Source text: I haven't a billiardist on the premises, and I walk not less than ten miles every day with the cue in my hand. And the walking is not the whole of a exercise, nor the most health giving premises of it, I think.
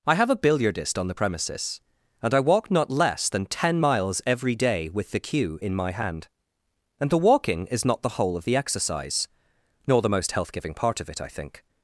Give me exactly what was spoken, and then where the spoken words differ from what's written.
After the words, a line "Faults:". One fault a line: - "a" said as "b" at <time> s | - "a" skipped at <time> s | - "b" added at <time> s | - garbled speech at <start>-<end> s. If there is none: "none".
I have a billiardist on the premises, and I walk not less than ten miles every day with the cue in my hand. And the walking is not the whole of the exercise, nor the most health giving part of it, I think.
Faults:
- "haven't" said as "have" at 0.1 s
- "a" said as "the" at 8.4 s
- "premises" said as "part" at 10.7 s